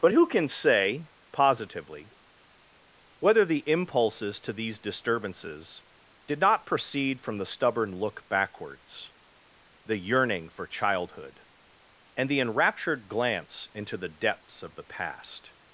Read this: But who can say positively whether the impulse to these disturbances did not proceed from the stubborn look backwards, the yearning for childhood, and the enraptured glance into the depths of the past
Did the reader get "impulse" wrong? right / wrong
wrong